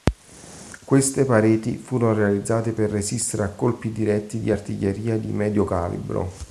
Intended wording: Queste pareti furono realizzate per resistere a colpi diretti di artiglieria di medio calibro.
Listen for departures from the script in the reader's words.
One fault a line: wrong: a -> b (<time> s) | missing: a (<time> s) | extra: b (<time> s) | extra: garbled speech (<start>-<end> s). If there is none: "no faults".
no faults